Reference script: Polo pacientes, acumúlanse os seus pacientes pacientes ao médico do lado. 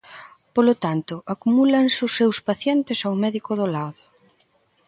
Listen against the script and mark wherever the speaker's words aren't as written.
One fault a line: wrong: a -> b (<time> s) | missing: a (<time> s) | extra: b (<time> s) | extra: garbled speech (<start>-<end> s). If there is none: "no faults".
wrong: pacientes -> tanto (0.8 s)
missing: pacientes (3.0 s)